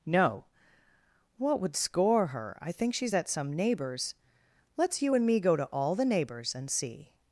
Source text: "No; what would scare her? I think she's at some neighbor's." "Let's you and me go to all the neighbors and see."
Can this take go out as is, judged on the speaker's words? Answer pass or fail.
fail